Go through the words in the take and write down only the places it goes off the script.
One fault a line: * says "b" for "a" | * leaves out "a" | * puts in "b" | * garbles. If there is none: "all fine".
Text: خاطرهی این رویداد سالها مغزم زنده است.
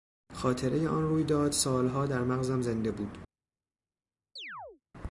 * says "آن" for "این"
* puts in "در"
* says "بود" for "است"